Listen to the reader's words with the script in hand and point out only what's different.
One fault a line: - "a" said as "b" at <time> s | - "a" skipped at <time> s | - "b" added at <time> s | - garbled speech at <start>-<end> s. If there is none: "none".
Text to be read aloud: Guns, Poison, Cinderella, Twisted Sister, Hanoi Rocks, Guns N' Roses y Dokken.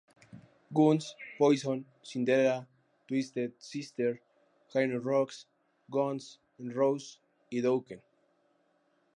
none